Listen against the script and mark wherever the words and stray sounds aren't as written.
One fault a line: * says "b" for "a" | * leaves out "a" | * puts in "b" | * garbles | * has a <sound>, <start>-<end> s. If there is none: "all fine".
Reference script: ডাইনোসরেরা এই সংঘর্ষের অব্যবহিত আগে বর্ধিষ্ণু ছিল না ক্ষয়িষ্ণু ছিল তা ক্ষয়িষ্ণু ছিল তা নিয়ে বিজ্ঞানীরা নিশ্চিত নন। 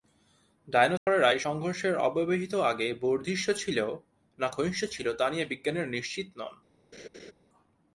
* has a dropout, 1.0-1.1 s
* leaves out "ক্ষয়িষ্ণু ছিল তা"
* has a laugh, 6.9-7.3 s